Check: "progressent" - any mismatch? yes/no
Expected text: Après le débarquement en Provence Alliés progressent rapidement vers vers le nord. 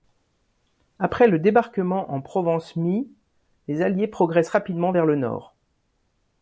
no